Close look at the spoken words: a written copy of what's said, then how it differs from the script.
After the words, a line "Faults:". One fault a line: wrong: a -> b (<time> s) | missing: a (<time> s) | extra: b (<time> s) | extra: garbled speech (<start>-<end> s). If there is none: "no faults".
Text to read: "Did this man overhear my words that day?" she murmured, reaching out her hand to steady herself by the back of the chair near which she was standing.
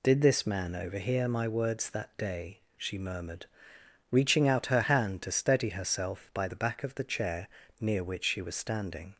"Did this man overhear my words that day?" she murmured, reaching out her hand to steady herself by the back of the chair near which she was standing.
Faults:
no faults